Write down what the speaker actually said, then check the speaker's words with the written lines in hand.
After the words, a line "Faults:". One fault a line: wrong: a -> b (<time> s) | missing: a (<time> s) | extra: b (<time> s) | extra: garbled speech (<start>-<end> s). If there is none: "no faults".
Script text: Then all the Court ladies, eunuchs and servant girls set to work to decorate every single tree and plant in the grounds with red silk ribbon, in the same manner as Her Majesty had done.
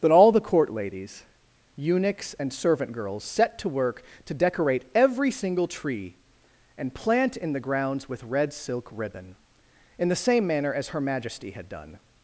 Then all the Court ladies, eunuchs and servant girls set to work to decorate every single tree and plant in the grounds with red silk ribbon, in the same manner as Her Majesty had done.
Faults:
no faults